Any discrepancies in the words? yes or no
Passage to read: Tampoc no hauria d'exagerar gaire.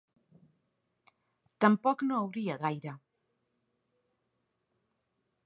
yes